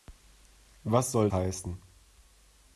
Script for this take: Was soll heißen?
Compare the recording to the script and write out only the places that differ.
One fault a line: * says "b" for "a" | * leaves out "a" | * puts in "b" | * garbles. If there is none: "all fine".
all fine